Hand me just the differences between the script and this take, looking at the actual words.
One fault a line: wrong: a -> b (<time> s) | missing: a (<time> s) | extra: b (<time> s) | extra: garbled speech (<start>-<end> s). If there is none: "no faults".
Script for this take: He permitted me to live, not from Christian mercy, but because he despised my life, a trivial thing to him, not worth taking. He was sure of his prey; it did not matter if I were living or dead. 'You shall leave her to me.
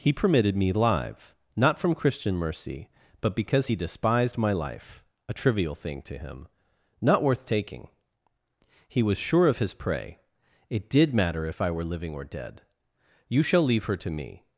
missing: to (0.7 s)
missing: not (11.1 s)